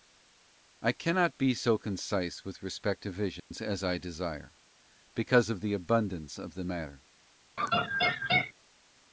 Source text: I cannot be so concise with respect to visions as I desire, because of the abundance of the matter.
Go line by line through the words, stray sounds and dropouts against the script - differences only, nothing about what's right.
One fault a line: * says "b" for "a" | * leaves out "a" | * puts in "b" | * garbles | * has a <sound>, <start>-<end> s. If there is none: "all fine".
* has a dropout, 3.4-3.5 s
* has a laugh, 7.6-8.5 s